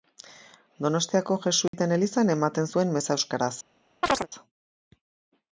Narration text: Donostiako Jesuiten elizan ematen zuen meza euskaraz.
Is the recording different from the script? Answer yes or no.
no